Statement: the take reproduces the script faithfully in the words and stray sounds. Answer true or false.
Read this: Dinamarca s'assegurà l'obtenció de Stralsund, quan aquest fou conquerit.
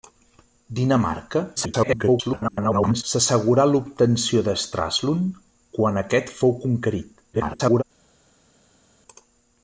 false